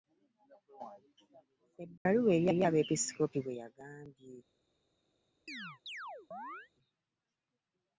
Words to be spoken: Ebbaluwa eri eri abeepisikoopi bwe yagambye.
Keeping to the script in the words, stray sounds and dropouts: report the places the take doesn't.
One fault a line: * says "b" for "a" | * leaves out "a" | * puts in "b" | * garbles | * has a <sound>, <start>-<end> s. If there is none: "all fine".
* has a dropout, 2.0-2.1 s
* has a chirp, 5.5-6.7 s